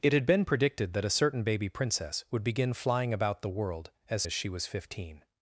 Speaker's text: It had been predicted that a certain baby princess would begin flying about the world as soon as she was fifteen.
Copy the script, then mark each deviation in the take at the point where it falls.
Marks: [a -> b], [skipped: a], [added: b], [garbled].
It had been predicted that a certain baby princess would begin flying about the world as [skipped: soon] as she was fifteen.